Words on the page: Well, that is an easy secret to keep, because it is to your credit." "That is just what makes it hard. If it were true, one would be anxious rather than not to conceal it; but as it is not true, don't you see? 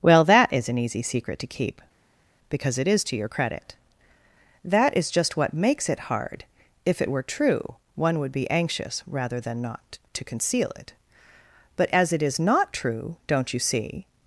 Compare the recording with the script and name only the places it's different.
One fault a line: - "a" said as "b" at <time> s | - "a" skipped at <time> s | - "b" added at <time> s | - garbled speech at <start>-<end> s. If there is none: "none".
none